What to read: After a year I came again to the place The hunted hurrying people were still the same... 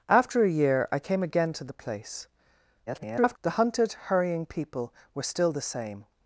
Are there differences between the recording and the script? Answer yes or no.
yes